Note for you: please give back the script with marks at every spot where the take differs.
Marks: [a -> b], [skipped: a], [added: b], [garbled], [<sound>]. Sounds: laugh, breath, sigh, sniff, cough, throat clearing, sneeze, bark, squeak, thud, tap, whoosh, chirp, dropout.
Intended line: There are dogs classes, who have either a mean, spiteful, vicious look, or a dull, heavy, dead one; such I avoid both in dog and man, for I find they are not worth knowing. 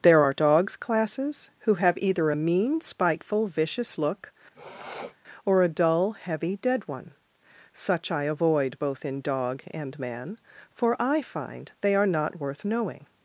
There are dogs classes, who have either a mean, spiteful, vicious look, [sniff] or a dull, heavy, dead one; such I avoid both in dog and man, for I find they are not worth knowing.